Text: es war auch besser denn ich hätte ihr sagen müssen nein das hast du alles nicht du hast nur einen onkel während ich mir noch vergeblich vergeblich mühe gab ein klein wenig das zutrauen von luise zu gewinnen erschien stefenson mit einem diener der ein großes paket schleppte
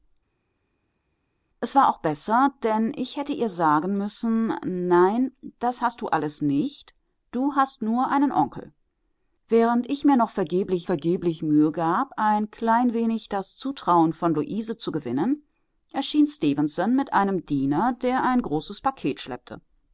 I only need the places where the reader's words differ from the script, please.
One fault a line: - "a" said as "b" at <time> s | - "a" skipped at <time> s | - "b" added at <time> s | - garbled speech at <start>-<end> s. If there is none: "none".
none